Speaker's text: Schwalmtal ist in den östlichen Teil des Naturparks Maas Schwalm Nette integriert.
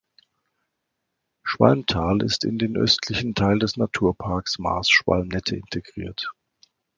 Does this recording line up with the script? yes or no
yes